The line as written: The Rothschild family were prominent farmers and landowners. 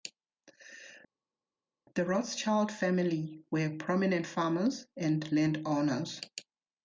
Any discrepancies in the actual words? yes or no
no